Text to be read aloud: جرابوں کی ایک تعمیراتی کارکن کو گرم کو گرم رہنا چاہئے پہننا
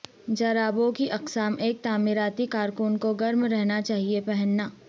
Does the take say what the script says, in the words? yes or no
no